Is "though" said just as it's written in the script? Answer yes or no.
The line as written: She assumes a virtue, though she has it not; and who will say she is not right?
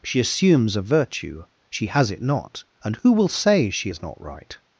no